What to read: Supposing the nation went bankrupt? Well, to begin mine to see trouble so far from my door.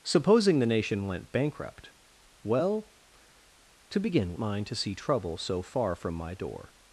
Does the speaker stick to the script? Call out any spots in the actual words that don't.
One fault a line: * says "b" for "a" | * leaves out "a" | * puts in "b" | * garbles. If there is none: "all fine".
all fine